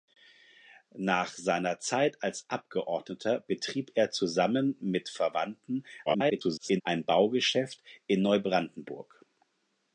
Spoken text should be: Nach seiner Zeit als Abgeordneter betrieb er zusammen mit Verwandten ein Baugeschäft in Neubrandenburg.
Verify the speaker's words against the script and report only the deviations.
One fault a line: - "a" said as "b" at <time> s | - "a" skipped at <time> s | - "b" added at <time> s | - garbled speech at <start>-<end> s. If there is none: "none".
- garbled speech at 6.1-6.8 s